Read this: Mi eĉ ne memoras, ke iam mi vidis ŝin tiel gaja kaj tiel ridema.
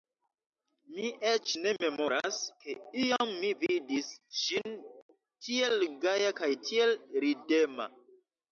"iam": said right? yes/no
yes